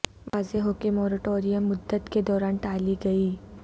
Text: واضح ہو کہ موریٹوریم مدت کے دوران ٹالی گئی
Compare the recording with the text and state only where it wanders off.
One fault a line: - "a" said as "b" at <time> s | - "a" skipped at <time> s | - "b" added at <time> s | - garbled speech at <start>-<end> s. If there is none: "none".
none